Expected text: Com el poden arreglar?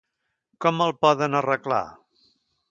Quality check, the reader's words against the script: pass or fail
pass